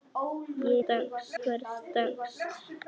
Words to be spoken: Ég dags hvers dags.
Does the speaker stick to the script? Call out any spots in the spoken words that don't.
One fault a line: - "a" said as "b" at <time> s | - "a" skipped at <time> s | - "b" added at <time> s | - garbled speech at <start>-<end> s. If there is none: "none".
none